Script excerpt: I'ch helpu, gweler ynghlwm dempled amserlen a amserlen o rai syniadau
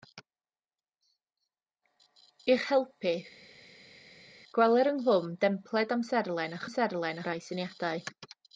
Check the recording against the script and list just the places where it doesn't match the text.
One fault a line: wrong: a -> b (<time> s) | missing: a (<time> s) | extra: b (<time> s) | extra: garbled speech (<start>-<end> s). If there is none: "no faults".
no faults